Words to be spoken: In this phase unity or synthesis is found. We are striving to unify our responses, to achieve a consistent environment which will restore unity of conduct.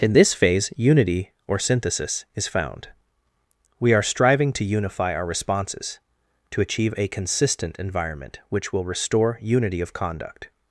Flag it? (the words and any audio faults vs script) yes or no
no